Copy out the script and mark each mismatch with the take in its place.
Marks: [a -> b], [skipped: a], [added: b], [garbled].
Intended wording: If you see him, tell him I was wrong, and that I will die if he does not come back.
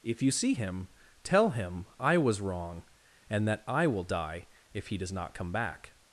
If you see him, tell him I was wrong, and that I will die if he does not come back.